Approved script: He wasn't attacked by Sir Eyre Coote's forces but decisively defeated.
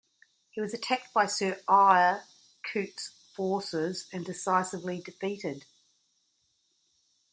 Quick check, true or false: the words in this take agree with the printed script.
false